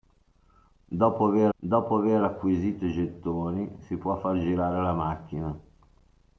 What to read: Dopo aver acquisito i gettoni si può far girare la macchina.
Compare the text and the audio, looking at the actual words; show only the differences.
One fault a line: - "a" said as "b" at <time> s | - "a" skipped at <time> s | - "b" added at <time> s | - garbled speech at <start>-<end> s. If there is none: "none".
- "dopo aver" added at 1.6 s